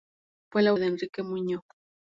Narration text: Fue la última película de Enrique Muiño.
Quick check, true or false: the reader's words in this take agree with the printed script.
false